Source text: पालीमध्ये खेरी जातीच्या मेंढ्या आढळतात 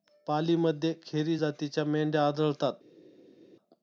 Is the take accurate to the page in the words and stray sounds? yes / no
yes